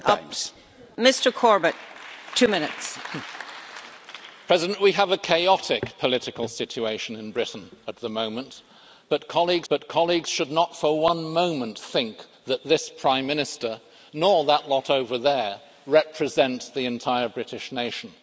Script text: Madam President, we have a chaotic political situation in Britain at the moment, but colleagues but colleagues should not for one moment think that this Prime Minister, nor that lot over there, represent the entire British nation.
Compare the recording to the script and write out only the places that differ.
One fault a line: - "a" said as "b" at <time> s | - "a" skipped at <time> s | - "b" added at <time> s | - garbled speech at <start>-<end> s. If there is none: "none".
none